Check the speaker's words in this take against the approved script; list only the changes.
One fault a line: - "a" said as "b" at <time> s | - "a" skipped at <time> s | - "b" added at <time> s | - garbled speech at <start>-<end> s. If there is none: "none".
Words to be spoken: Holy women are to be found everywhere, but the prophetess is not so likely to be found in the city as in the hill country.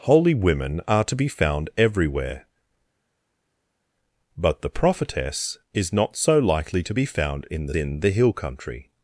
- "city as" skipped at 7.7 s